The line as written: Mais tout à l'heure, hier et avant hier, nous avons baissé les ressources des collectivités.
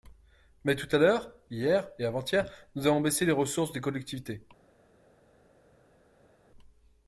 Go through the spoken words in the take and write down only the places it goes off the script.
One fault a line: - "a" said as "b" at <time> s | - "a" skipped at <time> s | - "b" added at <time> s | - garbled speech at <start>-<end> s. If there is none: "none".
none